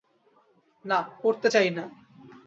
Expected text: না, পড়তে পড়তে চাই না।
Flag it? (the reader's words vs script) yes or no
yes